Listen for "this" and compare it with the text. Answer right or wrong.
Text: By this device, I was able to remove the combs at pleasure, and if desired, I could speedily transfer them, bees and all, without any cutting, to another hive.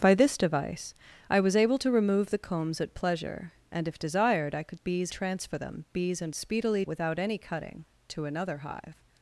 right